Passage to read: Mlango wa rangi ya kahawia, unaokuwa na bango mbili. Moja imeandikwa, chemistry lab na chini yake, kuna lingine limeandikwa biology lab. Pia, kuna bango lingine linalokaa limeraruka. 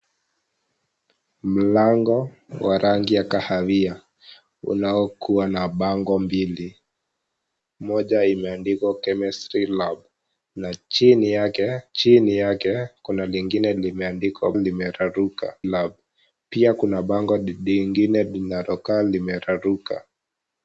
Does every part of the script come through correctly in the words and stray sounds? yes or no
no